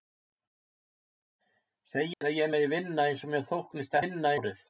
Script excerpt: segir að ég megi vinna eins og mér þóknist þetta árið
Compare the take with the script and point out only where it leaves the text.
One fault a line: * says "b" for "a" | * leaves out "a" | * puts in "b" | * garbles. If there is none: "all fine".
* says "vinna" for "þetta"